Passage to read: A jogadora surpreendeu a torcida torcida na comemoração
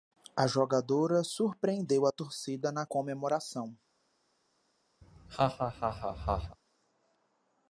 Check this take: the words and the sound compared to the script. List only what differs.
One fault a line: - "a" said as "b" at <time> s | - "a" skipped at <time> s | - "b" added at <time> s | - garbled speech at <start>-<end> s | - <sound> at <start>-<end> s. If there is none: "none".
- "torcida" skipped at 2.7 s
- laugh at 5.0-6.6 s